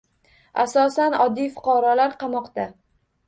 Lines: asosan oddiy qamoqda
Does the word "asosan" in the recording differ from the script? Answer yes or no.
no